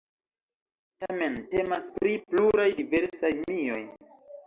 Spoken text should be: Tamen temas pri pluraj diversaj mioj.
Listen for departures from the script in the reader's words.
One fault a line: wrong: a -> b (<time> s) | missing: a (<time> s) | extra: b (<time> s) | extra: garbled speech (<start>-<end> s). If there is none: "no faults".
no faults